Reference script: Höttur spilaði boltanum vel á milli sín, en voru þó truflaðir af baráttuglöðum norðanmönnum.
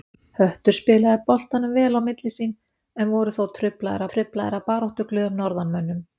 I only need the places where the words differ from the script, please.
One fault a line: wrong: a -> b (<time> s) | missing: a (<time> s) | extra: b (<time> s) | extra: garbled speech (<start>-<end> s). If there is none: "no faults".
extra: truflaðir (4.1 s)